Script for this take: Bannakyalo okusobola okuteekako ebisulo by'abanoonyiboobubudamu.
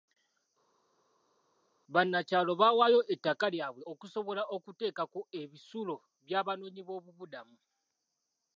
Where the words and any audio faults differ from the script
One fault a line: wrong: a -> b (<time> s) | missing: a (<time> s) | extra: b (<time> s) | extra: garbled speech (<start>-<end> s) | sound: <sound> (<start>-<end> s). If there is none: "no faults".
extra: baawaayo ettaka lyabwe (2.6 s)